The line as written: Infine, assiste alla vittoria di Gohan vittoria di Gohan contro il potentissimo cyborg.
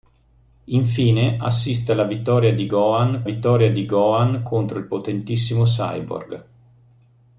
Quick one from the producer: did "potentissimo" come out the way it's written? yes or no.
yes